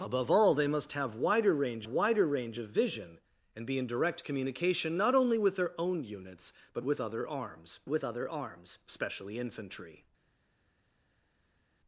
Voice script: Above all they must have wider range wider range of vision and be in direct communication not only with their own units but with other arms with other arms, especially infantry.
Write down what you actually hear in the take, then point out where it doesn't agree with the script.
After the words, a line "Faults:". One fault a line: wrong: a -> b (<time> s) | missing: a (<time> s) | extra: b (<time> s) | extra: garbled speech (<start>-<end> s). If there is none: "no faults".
Above all they must have wider range wider range of vision and be in direct communication not only with their own units but with other arms with other arms, especially infantry.
Faults:
no faults